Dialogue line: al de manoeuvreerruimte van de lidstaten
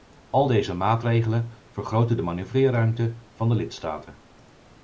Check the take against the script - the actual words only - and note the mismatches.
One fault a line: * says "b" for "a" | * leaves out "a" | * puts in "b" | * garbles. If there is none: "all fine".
* puts in "deze maatregelen vergroten"